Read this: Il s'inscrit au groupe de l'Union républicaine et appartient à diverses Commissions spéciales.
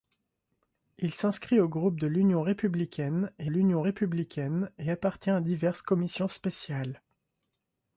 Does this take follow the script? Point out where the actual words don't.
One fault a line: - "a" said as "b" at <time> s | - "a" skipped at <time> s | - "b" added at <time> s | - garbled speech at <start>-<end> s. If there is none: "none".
- "l'Union républicaine et" added at 3.5 s